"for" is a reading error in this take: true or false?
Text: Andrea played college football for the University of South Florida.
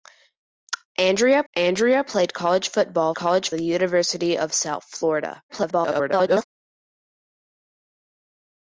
true